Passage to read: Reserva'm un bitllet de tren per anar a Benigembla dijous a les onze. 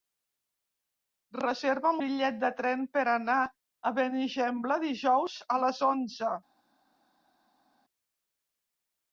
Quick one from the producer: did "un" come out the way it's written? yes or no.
no